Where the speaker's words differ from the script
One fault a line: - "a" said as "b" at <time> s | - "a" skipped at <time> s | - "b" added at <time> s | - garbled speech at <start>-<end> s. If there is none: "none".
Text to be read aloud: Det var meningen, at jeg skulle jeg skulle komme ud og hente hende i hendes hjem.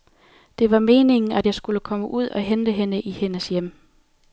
- "jeg skulle" skipped at 1.8 s